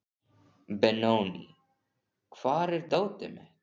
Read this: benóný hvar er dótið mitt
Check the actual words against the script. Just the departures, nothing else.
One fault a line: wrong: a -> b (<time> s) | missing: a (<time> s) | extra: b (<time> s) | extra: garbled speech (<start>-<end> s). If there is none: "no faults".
no faults